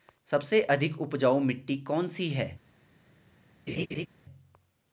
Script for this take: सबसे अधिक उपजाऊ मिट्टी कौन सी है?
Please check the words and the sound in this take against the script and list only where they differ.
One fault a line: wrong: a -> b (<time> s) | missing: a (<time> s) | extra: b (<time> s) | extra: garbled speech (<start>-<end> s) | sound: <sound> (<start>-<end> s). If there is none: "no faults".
sound: laugh (3.7-4.1 s)